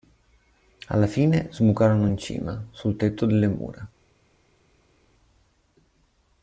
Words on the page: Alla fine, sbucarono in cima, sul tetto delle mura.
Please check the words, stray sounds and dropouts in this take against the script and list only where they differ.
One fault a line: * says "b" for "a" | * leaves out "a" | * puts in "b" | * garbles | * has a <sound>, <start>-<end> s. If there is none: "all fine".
all fine